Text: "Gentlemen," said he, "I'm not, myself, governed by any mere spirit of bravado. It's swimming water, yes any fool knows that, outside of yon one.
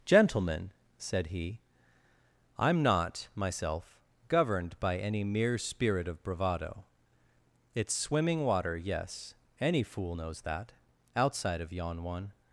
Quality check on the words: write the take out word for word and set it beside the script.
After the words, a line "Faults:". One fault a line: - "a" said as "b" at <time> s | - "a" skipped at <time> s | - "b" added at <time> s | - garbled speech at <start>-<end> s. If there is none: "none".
"Gentlemen," said he, "I'm not, myself, governed by any mere spirit of bravado. It's swimming water, yes any fool knows that, outside of yon one.
Faults:
none